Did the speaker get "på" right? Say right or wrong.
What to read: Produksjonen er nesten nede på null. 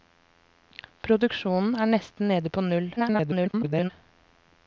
right